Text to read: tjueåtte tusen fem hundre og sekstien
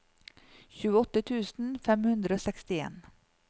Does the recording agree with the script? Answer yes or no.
yes